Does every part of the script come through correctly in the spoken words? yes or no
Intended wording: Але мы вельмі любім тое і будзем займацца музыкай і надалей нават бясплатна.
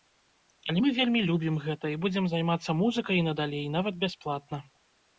no